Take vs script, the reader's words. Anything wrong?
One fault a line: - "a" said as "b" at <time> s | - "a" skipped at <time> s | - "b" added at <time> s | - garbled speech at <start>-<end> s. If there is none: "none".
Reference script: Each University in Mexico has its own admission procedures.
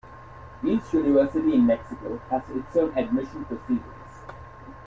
none